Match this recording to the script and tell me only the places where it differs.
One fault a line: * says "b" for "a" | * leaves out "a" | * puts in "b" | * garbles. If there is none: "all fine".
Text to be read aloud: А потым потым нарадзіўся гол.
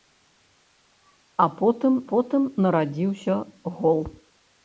all fine